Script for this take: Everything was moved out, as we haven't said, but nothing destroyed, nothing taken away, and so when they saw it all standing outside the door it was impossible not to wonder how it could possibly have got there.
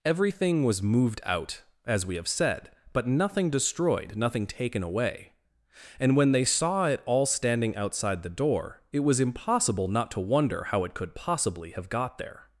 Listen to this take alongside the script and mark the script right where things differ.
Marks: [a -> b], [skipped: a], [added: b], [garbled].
Everything was moved out, as we [haven't -> have] said, but nothing destroyed, nothing taken away, and [skipped: so] when they saw it all standing outside the door it was impossible not to wonder how it could possibly have got there.